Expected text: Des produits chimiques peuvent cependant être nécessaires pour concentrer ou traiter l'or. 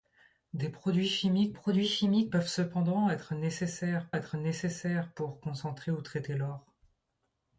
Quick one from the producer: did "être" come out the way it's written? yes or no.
yes